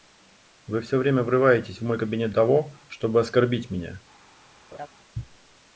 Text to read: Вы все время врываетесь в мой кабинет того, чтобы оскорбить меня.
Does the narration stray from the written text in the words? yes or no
no